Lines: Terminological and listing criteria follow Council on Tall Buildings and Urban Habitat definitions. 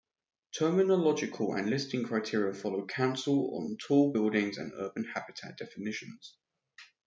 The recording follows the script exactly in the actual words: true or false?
true